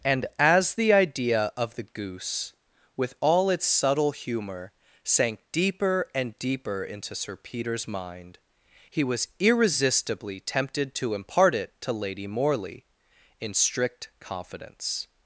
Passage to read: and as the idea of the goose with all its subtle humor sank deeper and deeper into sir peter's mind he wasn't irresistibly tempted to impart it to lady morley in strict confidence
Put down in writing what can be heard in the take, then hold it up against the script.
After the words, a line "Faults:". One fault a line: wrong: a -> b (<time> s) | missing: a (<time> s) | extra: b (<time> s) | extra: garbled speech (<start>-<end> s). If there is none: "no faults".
and as the idea of the goose with all its subtle humor sank deeper and deeper into sir peter's mind he was irresistibly tempted to impart it to lady morley in strict confidence
Faults:
wrong: wasn't -> was (9.0 s)